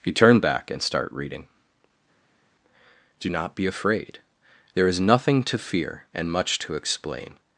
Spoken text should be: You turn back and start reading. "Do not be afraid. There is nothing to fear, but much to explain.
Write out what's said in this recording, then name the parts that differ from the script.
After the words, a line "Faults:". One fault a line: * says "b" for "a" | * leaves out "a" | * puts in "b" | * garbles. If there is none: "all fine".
You turn back and start reading. "Do not be afraid. There is nothing to fear, and much to explain.
Faults:
* says "and" for "but"